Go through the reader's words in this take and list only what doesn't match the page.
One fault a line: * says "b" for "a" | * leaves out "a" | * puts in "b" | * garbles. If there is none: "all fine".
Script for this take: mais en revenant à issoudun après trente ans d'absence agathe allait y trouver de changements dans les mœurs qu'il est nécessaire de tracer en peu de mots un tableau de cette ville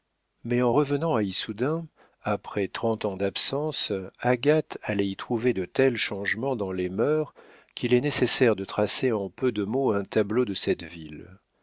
* puts in "tels"